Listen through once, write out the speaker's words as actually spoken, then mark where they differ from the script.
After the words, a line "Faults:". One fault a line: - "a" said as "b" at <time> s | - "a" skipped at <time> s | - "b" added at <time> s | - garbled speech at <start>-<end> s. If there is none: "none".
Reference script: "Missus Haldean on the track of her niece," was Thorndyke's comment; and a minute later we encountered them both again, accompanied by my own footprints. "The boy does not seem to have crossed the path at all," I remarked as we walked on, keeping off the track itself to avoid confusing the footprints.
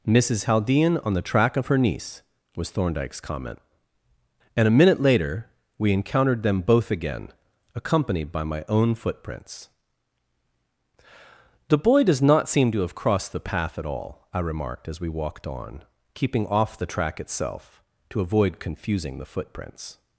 "Missus Haldean on the track of her niece," was Thorndyke's comment; and a minute later we encountered them both again, accompanied by my own footprints. "The boy does not seem to have crossed the path at all," I remarked as we walked on, keeping off the track itself to avoid confusing the footprints.
Faults:
none